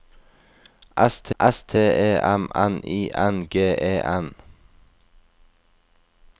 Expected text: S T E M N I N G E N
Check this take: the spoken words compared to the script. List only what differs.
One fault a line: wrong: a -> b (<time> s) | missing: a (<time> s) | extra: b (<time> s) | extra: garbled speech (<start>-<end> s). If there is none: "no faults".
extra: s T (1.4 s)